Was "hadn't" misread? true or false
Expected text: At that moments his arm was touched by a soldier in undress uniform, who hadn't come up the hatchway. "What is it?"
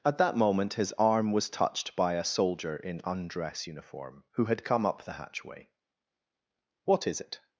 true